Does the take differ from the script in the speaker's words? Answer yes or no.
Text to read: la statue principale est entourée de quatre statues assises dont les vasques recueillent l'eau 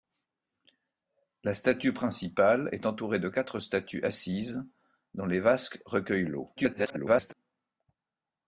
yes